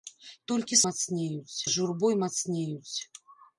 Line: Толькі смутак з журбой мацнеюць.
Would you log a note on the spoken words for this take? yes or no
yes